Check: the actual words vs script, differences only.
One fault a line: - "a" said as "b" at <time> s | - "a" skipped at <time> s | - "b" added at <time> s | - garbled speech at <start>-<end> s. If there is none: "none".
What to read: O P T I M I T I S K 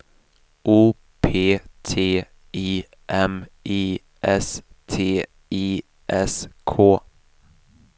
- "S" added at 4.2 s